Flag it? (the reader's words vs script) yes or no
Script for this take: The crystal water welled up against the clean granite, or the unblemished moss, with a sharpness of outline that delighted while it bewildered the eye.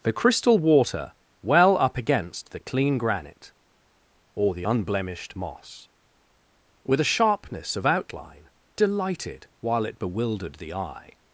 yes